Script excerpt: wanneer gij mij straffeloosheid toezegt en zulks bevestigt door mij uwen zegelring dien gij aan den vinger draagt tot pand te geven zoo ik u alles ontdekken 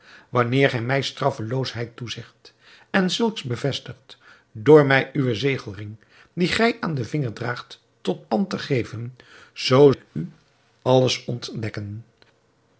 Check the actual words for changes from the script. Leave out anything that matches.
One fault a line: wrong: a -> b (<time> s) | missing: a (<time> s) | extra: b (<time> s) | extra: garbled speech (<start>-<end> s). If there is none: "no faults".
no faults